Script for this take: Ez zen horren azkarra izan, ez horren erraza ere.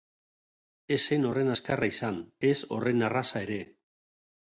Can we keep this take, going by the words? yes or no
yes